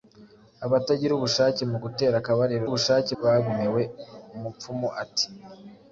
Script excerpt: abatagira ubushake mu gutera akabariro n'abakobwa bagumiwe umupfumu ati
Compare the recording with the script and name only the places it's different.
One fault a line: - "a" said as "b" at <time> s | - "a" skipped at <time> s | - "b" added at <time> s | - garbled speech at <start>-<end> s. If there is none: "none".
- "n'abakobwa" said as "ubushake" at 2.7 s